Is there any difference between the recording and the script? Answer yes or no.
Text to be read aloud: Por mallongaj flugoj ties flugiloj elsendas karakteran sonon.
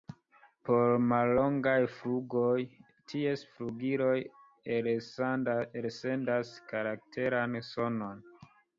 no